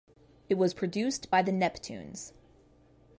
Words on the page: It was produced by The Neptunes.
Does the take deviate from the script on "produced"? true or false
false